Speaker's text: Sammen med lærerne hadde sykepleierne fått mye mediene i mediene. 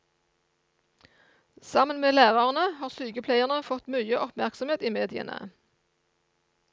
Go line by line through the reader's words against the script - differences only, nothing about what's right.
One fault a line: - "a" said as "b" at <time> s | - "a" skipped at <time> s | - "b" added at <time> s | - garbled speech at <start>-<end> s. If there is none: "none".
- "hadde" said as "har" at 2.8 s
- "mediene" said as "oppmerksomhet" at 4.2 s